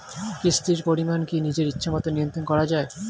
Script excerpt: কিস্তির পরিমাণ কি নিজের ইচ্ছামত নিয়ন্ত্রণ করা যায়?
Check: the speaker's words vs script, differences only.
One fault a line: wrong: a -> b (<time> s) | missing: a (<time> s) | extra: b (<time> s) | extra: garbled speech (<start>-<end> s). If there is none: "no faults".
no faults